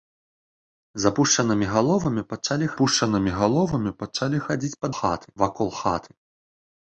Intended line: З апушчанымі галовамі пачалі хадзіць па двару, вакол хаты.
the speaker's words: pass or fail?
fail